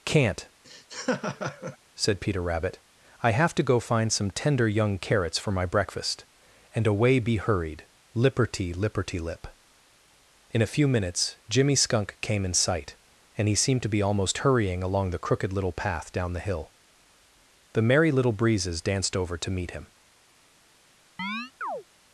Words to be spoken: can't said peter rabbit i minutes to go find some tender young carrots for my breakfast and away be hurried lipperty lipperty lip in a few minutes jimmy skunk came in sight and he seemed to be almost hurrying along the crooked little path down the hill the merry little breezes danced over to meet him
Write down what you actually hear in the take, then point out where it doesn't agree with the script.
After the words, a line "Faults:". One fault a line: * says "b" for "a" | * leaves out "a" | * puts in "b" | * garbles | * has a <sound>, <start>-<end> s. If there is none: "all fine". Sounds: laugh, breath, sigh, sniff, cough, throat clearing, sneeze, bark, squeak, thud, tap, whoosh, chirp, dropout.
can't said peter rabbit i have to go find some tender young carrots for my breakfast and away be hurried lipperty lipperty lip in a few minutes jimmy skunk came in sight and he seemed to be almost hurrying along the crooked little path down the hill the merry little breezes danced over to meet him
Faults:
* has a laugh, 0.6-1.8 s
* says "have" for "minutes"
* has a chirp, 21.2-21.8 s